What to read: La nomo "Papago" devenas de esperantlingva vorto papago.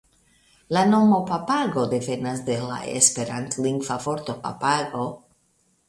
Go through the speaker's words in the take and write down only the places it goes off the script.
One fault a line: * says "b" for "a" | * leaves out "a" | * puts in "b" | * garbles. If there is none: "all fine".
* puts in "la"